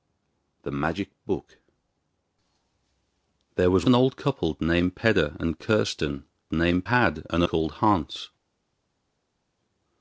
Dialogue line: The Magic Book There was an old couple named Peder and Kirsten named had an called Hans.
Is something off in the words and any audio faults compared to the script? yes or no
no